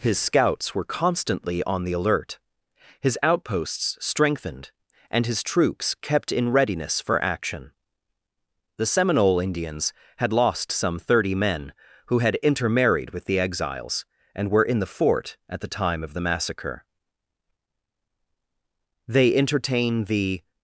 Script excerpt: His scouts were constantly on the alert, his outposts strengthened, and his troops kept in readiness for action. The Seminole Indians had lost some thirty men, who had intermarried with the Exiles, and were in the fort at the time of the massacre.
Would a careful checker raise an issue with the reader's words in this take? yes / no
yes